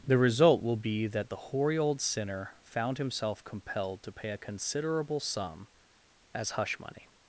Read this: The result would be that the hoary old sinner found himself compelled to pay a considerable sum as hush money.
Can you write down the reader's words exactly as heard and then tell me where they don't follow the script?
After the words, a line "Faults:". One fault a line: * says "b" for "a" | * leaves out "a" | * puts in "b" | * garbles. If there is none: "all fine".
The result will be that the hoary old sinner found himself compelled to pay a considerable sum as hush money.
Faults:
* says "will" for "would"